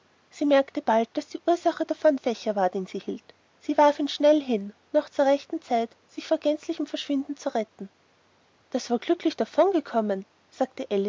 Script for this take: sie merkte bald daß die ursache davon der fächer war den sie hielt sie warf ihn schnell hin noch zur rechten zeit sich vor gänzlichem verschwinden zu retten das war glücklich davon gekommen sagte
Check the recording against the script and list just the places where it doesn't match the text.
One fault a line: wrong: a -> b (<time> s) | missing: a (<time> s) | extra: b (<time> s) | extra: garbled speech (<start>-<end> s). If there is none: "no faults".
missing: der (2.2 s)